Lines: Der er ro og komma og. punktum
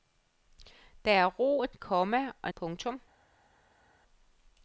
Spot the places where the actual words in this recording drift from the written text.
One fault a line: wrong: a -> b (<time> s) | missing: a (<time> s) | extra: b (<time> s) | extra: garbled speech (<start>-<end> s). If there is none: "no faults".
no faults